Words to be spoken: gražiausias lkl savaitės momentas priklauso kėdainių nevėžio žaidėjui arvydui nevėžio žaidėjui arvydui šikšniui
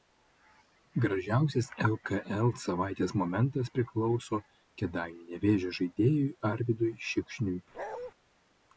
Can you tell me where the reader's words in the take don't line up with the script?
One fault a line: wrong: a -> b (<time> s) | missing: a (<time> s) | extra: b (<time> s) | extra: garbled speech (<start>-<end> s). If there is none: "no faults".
missing: nevėžio žaidėjui arvydui (6.9 s)